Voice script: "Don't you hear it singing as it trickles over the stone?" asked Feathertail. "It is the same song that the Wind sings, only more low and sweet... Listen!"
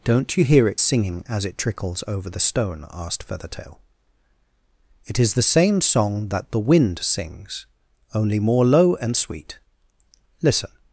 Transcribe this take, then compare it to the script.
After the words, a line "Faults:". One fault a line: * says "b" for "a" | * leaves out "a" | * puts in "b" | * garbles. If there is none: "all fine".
"Don't you hear it singing as it trickles over the stone?" asked Feathertail. "It is the same song that the Wind sings, only more low and sweet... Listen!"
Faults:
all fine